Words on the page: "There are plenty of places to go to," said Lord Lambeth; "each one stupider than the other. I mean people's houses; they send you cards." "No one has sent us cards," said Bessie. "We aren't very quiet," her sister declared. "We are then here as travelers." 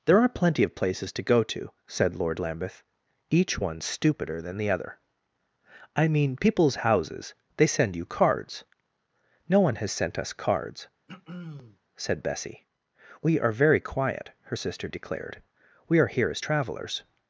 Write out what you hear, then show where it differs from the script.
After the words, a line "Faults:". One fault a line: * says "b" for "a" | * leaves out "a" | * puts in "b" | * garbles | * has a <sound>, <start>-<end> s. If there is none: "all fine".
"There are plenty of places to go to," said Lord Lambeth; "each one stupider than the other. I mean people's houses; they send you cards." "No one has sent us cards," said Bessie. "We are very quiet," her sister declared. "We are here as travelers."
Faults:
* has a throat clearing, 11.1-11.8 s
* says "are" for "aren't"
* leaves out "then"